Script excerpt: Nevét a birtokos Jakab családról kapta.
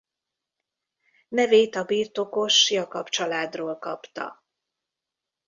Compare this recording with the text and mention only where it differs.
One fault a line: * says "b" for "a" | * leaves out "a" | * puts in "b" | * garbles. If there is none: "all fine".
all fine